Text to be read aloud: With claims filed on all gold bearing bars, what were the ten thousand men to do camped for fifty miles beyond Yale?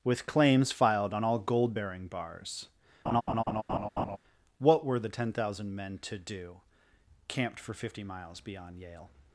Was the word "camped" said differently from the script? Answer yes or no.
no